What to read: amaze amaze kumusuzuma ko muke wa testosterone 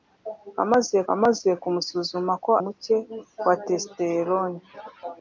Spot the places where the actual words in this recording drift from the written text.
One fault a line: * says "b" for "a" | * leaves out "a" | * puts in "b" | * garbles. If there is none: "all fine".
all fine